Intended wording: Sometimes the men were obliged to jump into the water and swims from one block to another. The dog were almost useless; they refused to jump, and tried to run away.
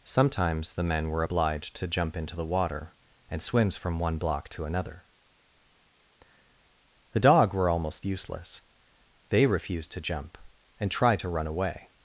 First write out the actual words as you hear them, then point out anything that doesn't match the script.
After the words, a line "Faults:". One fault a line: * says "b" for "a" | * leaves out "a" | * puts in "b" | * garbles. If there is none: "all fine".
Sometimes the men were obliged to jump into the water and swims from one block to another. The dog were almost useless; they refused to jump, and tried to run away.
Faults:
all fine